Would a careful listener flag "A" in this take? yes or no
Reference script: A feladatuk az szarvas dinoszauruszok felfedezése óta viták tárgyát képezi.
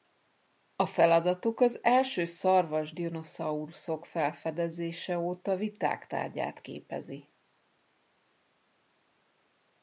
no